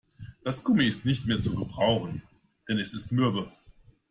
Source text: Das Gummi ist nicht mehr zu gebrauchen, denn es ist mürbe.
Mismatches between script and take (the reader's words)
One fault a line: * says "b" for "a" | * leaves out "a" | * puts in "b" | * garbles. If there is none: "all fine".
all fine